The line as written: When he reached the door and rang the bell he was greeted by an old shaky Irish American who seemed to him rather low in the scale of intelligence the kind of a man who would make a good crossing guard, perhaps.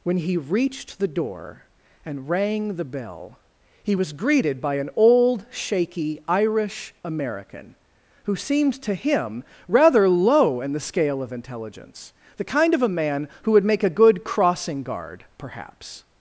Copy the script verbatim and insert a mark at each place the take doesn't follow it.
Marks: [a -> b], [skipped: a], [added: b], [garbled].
When he reached the door and rang the bell he was greeted by an old shaky Irish American who seemed to him rather low in the scale of intelligence the kind of a man who would make a good crossing guard, perhaps.